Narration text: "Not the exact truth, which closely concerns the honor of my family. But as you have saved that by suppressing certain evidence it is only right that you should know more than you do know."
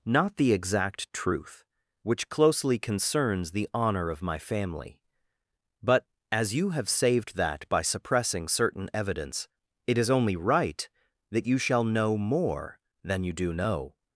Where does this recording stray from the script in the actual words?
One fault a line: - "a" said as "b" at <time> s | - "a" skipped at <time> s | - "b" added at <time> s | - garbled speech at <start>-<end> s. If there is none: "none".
- "should" said as "shall" at 11.6 s